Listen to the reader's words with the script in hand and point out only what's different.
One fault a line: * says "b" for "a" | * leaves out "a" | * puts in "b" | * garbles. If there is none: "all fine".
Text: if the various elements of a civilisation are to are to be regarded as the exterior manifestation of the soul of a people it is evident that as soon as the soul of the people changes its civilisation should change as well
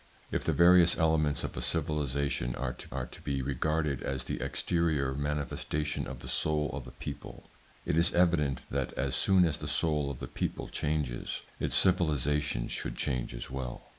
all fine